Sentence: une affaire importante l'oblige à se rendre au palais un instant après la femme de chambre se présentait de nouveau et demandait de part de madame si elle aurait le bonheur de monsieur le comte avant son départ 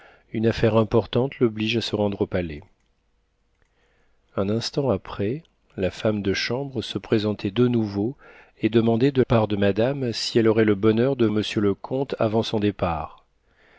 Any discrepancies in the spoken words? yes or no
no